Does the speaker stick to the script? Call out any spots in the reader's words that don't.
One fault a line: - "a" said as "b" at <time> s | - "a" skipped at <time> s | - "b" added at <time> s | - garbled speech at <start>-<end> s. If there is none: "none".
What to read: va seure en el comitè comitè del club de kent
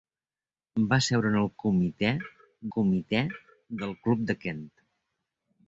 none